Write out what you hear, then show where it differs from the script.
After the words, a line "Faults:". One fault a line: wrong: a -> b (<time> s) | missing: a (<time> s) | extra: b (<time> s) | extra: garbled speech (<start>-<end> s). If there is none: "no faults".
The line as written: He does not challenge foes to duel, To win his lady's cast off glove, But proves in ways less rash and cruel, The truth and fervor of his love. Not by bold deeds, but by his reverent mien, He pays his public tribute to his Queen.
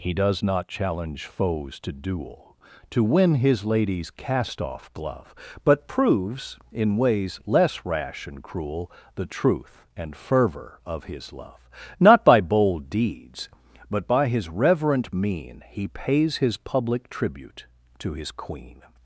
He does not challenge foes to duel, To win his lady's cast off glove, But proves in ways less rash and cruel, The truth and fervor of his love. Not by bold deeds, but by his reverent mien, He pays his public tribute to his Queen.
Faults:
no faults